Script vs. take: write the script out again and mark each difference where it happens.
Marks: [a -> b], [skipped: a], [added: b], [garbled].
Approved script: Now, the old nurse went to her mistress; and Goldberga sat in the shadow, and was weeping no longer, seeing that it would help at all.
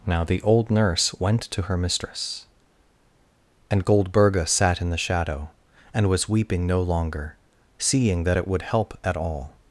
Now, the old nurse went to her mistress; and Goldberga sat in the shadow, and was weeping no longer, seeing that it would help at all.